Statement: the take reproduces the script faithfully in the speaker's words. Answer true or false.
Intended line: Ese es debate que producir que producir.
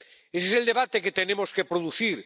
false